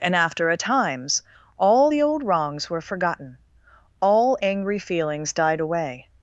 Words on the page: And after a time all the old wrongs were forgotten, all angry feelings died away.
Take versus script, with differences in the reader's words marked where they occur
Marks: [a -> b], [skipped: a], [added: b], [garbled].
And after a [time -> times] all the old wrongs were forgotten, all angry feelings died away.